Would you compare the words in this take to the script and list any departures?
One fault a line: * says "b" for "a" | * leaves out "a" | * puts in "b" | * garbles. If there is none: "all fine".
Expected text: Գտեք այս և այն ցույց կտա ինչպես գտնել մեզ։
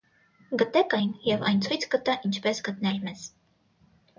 * says "այն" for "այս"